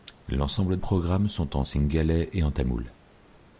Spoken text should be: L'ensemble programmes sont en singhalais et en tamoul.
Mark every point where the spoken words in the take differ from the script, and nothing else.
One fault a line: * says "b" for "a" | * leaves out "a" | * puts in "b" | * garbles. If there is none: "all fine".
all fine